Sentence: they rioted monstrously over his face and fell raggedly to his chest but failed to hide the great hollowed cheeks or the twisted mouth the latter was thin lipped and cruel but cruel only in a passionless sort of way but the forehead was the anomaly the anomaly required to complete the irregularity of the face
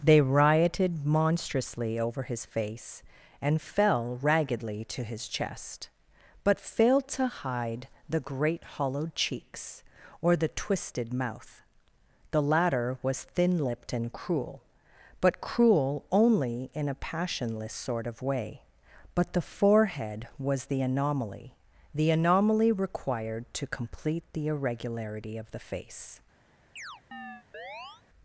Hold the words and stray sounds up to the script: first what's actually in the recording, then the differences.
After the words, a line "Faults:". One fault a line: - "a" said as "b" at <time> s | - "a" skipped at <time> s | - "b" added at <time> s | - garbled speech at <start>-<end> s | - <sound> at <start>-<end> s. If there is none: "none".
they rioted monstrously over his face and fell raggedly to his chest but failed to hide the great hollowed cheeks or the twisted mouth the latter was thin lipped and cruel but cruel only in a passionless sort of way but the forehead was the anomaly the anomaly required to complete the irregularity of the face
Faults:
- chirp at 26.8-28.0 s